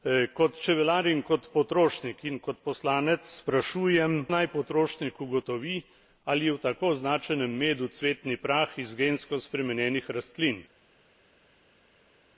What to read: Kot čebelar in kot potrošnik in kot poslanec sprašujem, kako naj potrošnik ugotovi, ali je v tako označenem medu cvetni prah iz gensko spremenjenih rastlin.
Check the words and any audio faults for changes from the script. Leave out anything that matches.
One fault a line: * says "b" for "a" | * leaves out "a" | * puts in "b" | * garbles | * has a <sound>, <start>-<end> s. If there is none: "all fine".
* leaves out "kako"